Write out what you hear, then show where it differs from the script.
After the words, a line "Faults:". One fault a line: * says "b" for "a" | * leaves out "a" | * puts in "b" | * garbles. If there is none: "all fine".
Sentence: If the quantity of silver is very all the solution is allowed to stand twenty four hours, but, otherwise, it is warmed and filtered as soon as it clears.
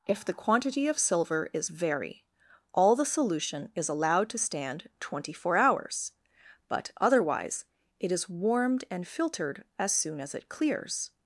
If the quantity of silver is very all the solution is allowed to stand twenty four hours, but, otherwise, it is warmed and filtered as soon as it clears.
Faults:
all fine